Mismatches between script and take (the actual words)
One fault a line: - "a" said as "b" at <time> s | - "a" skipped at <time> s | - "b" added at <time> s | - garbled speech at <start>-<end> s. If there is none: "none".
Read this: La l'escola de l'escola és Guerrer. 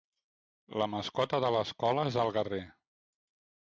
- "l'escola" said as "mascota" at 0.9 s
- "el" added at 2.3 s